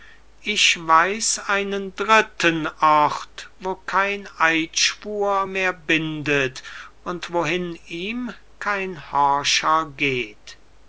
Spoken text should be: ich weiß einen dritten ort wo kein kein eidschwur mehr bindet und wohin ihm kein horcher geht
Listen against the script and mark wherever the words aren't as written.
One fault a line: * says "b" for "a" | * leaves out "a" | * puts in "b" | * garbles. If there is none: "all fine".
* leaves out "kein"